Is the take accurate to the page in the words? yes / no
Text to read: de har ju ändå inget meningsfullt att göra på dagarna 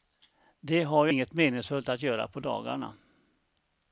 no